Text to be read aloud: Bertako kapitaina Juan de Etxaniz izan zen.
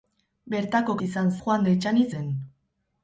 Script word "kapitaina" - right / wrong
wrong